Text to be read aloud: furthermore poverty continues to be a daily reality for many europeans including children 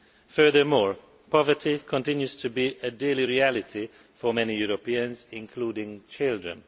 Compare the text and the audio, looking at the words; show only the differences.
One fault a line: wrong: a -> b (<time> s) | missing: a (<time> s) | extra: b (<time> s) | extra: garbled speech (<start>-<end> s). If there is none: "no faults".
no faults